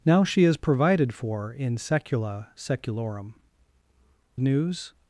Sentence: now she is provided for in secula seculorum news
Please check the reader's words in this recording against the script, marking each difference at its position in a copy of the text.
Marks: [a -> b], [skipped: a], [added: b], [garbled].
now she is provided for in secula seculorum news